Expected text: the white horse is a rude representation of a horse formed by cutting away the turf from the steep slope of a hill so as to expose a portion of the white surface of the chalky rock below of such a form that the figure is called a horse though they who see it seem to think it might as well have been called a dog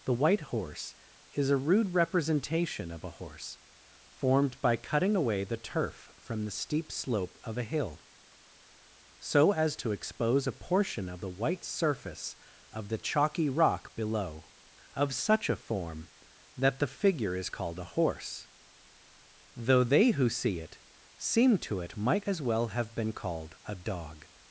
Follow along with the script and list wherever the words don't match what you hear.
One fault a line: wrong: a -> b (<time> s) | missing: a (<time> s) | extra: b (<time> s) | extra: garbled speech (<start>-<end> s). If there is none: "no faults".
missing: think (21.8 s)